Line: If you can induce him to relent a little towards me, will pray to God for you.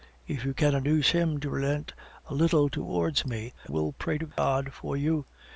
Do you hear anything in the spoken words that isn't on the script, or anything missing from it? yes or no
no